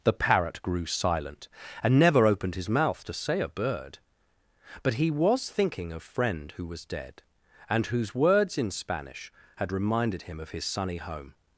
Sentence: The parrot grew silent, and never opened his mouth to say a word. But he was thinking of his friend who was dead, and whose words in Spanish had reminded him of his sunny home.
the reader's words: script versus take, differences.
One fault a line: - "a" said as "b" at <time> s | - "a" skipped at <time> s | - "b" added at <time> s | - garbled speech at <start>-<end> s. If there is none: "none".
- "word" said as "bird" at 3.5 s
- "his" skipped at 6.0 s